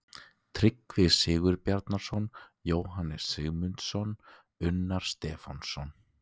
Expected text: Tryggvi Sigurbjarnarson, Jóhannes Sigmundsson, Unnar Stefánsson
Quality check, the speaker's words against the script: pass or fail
pass